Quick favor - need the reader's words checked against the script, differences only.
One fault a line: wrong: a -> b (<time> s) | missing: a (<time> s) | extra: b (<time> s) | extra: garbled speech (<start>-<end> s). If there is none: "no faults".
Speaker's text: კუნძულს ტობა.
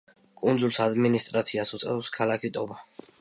extra: ადმინისტრაციას უწევს ქალაქი (0.8 s)